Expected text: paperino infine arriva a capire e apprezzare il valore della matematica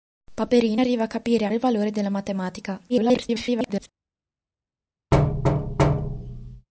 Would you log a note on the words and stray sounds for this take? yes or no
yes